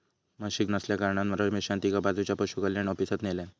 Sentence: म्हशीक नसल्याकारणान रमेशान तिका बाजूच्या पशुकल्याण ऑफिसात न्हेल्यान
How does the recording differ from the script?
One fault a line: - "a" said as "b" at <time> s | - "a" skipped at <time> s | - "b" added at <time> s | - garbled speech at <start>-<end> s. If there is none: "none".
none